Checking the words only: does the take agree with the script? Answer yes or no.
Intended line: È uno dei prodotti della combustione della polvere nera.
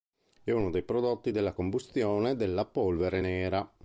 yes